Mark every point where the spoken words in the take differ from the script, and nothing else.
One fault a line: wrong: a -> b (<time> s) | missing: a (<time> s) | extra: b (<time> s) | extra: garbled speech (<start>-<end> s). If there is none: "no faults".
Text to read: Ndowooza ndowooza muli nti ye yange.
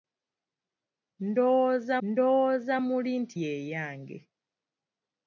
no faults